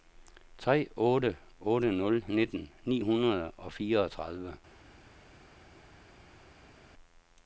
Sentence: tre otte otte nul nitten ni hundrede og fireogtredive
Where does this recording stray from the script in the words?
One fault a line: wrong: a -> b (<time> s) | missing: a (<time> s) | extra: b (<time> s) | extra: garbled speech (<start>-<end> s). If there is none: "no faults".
no faults